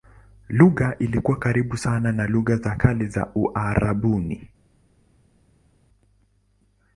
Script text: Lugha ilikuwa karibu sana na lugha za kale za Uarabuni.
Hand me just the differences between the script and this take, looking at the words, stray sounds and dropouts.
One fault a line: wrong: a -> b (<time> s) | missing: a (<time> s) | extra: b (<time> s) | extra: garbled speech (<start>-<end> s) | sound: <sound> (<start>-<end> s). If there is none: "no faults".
no faults